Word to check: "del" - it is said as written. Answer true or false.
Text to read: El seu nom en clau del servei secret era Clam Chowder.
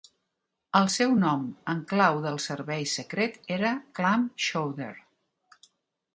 true